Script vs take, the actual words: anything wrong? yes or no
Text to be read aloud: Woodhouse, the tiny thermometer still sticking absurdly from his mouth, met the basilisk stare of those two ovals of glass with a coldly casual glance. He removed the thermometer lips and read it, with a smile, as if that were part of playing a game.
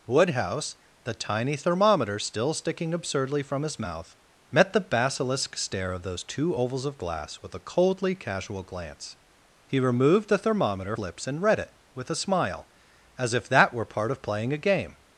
no